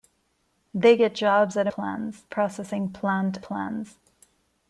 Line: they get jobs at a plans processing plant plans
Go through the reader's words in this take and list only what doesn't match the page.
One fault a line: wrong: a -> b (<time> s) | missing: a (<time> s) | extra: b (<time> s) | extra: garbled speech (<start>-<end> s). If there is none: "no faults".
no faults